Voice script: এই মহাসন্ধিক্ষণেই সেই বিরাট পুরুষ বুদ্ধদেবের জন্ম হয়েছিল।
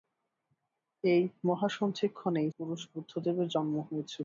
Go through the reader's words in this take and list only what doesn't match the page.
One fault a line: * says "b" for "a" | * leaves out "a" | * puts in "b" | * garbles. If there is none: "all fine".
* leaves out "সেই বিরাট"